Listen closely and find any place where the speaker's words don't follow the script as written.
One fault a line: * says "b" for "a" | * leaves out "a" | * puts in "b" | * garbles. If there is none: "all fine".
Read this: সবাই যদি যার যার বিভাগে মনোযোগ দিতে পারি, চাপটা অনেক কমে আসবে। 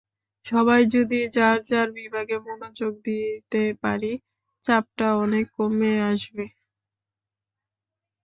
all fine